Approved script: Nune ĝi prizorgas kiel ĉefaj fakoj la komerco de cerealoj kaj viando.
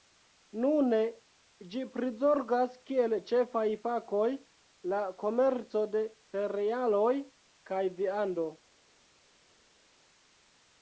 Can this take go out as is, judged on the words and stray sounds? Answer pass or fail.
pass